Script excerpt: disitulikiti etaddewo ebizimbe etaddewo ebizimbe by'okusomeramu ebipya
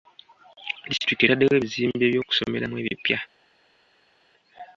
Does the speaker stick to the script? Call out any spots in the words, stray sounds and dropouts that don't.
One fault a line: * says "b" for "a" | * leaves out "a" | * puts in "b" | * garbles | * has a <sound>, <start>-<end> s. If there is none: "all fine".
* leaves out "etaddewo ebizimbe"